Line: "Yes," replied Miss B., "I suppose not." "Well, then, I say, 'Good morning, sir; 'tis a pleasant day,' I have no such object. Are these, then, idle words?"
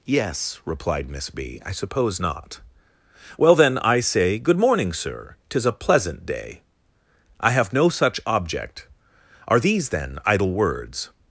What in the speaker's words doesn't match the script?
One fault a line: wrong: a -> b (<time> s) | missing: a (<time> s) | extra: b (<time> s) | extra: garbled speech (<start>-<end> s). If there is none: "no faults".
no faults